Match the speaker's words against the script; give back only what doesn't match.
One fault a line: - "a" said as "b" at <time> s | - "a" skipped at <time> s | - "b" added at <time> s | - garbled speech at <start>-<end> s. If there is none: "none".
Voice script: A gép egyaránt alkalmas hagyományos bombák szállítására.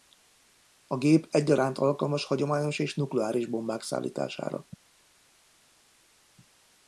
- "és nukleáris" added at 2.8 s